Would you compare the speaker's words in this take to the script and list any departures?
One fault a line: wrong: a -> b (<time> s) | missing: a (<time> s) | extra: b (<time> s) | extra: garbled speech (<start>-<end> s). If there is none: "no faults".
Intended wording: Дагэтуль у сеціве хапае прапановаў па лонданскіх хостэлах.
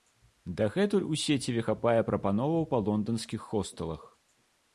no faults